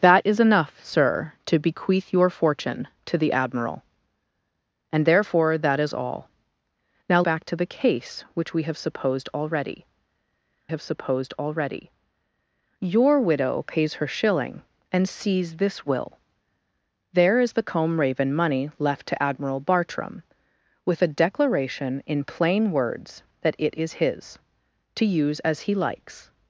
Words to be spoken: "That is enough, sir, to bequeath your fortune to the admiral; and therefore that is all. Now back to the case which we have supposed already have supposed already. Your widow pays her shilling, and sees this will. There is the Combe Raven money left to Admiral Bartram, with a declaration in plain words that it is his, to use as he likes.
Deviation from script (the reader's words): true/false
false